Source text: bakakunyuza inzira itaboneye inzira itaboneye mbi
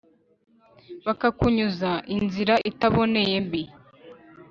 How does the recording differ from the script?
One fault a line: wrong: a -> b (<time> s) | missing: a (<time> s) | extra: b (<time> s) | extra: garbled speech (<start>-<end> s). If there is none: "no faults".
missing: inzira itaboneye (3.4 s)